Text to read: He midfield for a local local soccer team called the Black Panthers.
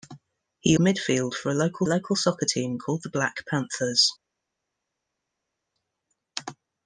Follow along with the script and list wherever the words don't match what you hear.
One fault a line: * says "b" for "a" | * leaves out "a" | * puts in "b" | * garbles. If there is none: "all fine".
all fine